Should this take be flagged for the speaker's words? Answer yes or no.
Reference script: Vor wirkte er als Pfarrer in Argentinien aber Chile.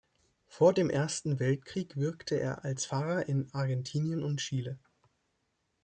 yes